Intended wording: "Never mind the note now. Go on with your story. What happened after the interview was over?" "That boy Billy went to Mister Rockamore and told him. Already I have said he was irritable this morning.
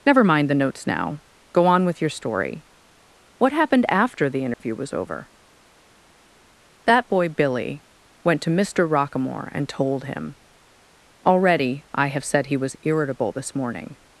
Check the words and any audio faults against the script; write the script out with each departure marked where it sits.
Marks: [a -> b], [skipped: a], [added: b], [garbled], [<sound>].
"Never mind the [note -> notes] now. Go on with your story. What happened after the interview [dropout] was over?" "That boy Billy went to Mister Rockamore and told him. Already I have said he was irritable this morning.